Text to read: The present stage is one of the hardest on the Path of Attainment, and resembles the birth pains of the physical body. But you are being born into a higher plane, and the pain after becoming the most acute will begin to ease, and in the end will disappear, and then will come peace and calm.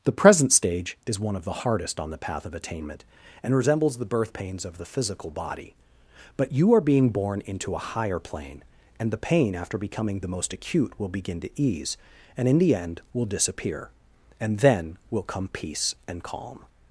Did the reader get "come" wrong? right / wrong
right